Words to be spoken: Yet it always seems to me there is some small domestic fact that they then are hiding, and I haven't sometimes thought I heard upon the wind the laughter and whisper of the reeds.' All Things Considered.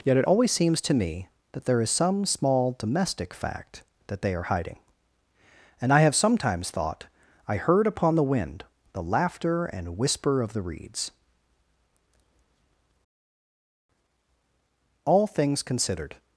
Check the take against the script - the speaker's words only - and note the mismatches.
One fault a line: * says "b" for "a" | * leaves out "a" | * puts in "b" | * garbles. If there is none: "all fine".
* puts in "that"
* leaves out "then"
* says "have" for "haven't"